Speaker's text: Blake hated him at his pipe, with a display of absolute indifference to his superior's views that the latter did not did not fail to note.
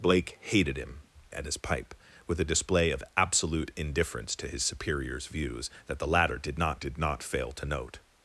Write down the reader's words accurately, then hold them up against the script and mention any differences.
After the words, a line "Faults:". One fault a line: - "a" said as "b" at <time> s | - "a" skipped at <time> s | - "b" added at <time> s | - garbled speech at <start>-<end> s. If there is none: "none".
Blake hated him at his pipe, with a display of absolute indifference to his superior's views that the latter did not did not fail to note.
Faults:
none